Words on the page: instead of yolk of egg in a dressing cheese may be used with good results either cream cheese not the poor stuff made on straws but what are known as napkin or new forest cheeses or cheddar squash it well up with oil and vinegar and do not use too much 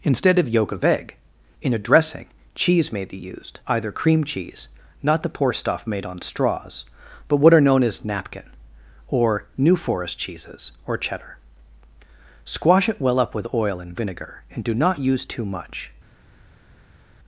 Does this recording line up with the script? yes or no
no